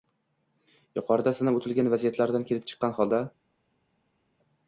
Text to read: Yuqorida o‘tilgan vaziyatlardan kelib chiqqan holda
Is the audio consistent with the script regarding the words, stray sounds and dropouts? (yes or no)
no